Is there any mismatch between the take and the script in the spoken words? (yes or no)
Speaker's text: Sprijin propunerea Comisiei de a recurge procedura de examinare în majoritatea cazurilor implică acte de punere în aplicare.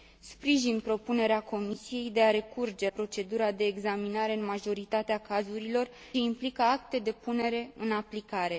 no